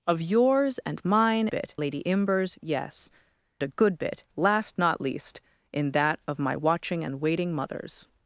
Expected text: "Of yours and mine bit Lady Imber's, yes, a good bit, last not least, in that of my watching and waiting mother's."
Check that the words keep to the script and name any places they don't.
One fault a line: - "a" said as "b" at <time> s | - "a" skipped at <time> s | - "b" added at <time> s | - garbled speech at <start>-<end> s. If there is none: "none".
none